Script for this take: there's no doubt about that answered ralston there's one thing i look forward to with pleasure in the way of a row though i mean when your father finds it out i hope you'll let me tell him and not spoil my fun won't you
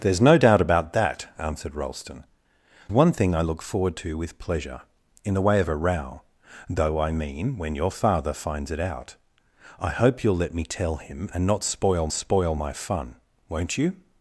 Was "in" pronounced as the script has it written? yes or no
yes